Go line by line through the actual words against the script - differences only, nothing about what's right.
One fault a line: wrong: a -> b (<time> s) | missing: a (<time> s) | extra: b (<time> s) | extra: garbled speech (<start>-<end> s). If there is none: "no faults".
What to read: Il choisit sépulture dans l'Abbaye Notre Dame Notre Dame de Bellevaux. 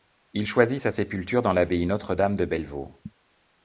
extra: sa (0.8 s)
missing: Notre Dame (2.4 s)